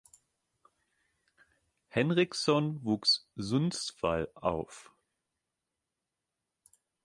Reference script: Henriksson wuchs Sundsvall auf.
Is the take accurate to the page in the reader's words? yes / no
yes